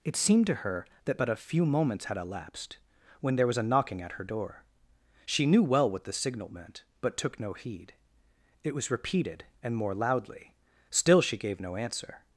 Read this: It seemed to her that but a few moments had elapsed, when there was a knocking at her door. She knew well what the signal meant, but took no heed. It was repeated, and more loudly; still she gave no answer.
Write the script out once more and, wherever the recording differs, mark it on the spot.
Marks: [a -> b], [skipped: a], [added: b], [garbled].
It seemed to her that but a few moments had elapsed, when there was a knocking at her door. She knew well what the signal meant, but took no heed. It was repeated, and more loudly; still she gave no answer.